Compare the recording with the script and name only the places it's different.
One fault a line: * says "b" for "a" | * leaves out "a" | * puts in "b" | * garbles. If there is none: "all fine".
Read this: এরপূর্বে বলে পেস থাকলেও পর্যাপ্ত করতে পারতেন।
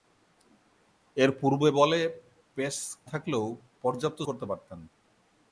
all fine